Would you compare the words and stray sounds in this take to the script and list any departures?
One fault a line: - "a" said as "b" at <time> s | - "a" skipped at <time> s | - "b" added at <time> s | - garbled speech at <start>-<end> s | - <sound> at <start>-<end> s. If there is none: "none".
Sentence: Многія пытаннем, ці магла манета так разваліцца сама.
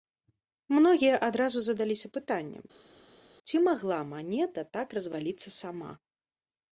- "адразу задаліся" added at 1.3 s